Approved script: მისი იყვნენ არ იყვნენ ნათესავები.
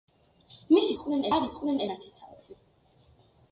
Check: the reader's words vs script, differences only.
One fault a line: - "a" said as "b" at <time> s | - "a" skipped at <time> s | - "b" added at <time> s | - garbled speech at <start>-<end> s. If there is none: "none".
none